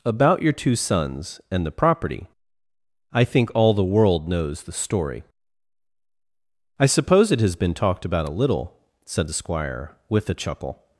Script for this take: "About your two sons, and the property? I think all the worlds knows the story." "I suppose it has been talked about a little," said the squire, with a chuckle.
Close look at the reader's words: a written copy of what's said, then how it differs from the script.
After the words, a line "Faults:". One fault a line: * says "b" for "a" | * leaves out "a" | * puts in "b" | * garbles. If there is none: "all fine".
"About your two sons, and the property? I think all the world knows the story." "I suppose it has been talked about a little," said the squire, with a chuckle.
Faults:
* says "world" for "worlds"